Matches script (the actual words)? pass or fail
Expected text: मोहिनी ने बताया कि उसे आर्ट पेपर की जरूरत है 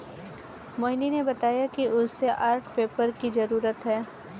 pass